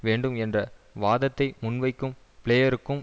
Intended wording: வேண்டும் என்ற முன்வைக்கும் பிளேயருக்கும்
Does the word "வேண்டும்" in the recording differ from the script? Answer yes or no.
no